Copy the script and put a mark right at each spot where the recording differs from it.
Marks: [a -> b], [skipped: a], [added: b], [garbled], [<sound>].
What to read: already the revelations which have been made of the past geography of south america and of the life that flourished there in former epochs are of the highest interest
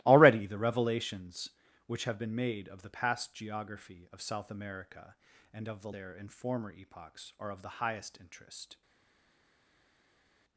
already the revelations which have been made of the past geography of south america and of the [skipped: life that flourished] there in former epochs are of the highest interest